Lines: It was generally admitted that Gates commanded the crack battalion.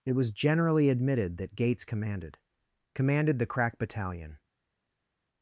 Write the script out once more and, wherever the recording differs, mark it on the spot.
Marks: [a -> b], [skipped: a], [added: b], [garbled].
It was generally admitted that Gates commanded [added: commanded] the crack battalion.